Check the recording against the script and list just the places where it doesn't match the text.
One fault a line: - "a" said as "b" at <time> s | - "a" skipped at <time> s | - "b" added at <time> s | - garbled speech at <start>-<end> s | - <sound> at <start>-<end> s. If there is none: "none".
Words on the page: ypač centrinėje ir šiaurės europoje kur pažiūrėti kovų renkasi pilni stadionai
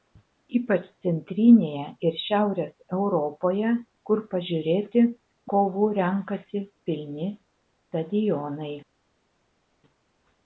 none